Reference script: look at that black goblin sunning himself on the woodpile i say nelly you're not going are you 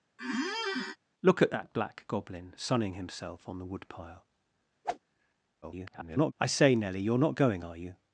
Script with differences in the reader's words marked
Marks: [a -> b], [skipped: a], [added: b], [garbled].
look at that black goblin sunning himself on the woodpile [garbled] i say nelly you're not going are you